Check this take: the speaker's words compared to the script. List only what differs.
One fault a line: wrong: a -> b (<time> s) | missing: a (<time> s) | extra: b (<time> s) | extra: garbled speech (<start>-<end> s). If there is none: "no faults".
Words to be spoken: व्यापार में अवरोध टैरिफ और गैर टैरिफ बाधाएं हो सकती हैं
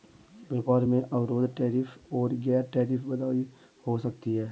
no faults